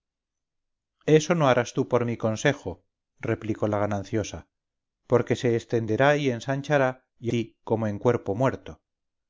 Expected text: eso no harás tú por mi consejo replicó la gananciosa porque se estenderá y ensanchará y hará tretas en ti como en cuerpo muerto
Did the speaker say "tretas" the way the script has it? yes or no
no